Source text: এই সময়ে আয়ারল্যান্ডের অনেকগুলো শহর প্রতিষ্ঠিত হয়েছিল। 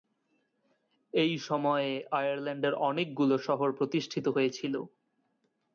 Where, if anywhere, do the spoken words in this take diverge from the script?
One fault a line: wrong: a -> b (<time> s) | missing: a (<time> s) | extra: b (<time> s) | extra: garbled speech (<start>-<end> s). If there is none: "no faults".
no faults